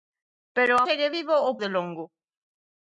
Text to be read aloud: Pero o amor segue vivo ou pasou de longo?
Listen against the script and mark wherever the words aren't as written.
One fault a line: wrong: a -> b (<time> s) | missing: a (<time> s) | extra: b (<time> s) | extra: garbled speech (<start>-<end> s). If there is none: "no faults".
missing: amor (0.8 s)
missing: pasou (1.6 s)